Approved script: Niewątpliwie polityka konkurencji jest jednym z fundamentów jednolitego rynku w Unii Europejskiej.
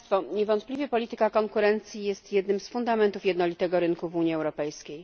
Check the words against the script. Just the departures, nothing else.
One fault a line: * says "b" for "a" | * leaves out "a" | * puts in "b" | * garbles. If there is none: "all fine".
all fine